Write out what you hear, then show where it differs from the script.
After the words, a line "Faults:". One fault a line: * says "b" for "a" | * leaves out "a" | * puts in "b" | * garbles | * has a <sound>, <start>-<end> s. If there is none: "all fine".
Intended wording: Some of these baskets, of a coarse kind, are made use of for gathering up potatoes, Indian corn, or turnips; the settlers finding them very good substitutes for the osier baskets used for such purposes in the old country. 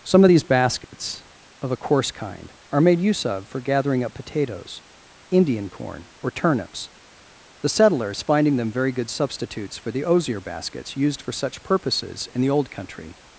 Some of these baskets, of a coarse kind, are made use of for gathering up potatoes, Indian corn, or turnips; the settlers finding them very good substitutes for the osier baskets used for such purposes in the old country.
Faults:
* has a dropout, 0.8-0.9 s